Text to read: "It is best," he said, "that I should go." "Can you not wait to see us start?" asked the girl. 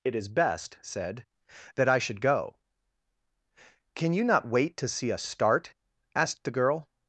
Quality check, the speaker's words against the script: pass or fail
fail